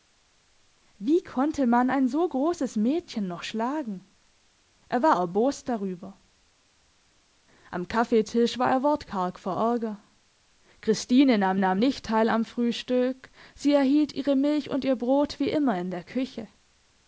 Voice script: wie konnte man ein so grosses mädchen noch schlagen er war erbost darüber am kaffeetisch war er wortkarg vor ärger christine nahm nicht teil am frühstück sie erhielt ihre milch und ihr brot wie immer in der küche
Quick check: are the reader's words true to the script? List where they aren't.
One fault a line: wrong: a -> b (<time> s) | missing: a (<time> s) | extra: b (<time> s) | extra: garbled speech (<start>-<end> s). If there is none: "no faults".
extra: nahm (11.6 s)